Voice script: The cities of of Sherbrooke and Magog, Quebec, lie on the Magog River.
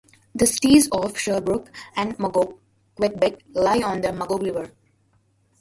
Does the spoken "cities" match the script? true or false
true